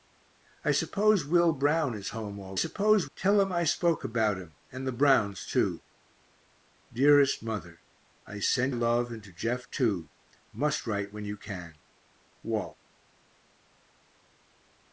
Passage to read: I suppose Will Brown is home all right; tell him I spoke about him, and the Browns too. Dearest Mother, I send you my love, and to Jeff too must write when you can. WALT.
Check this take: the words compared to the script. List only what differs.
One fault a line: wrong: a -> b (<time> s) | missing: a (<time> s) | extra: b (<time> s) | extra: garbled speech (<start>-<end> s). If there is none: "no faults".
wrong: right -> suppose (2.5 s)
missing: you my (8.7 s)